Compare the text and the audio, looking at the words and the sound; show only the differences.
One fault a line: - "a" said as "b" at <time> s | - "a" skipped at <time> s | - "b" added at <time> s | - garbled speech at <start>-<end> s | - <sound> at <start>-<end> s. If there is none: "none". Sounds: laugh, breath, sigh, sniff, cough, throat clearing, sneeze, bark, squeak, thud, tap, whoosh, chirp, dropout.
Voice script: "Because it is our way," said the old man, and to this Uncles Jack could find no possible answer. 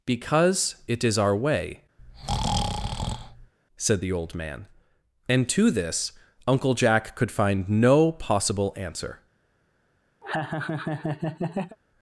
- breath at 2.0-3.5 s
- "Uncles" said as "Uncle" at 6.5 s
- laugh at 10.2-11.8 s